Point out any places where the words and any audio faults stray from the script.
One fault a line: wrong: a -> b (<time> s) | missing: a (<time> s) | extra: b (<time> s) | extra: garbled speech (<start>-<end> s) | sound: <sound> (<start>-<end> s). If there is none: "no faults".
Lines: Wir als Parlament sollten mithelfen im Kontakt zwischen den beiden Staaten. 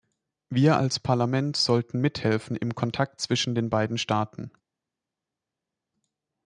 no faults